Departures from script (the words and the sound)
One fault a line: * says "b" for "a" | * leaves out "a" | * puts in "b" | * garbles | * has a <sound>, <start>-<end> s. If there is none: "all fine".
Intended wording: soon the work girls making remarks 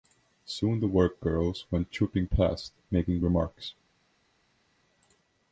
* puts in "went trooping past"